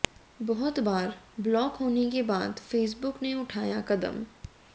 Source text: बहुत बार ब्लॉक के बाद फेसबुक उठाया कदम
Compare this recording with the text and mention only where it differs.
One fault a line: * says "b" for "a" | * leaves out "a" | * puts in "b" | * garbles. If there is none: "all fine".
* puts in "होने"
* puts in "ने"